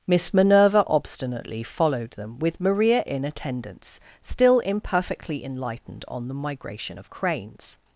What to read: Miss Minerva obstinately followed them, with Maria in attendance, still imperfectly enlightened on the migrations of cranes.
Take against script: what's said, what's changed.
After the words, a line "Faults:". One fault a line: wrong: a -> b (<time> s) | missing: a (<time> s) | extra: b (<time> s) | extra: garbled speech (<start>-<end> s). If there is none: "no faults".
Miss Minerva obstinately followed them, with Maria in attendance, still imperfectly enlightened on the migration of cranes.
Faults:
wrong: migrations -> migration (6.3 s)